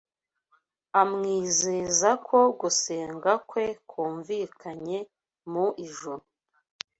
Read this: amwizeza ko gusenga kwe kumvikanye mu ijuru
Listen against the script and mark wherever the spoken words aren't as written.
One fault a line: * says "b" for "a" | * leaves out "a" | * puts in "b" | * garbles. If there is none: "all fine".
all fine